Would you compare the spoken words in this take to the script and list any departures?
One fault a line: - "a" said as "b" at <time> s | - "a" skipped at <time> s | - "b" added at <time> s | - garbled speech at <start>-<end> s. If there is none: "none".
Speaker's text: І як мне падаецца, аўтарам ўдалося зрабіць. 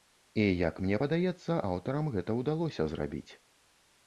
- "гэта" added at 2.2 s